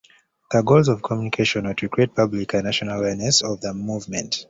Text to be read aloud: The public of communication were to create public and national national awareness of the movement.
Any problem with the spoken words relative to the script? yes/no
yes